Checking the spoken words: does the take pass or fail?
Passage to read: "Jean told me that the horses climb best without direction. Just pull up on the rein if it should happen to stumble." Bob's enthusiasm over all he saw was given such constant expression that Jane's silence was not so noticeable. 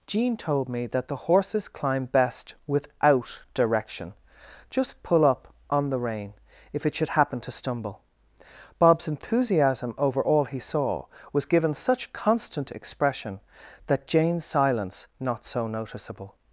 fail